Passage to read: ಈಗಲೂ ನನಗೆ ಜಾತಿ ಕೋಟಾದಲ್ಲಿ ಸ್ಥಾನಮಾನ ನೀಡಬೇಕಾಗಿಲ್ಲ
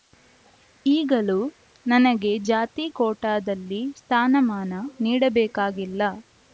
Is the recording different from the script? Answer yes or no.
no